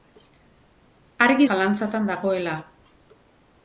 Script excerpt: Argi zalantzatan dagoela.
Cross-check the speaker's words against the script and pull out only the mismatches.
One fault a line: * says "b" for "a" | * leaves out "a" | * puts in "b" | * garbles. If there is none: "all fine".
all fine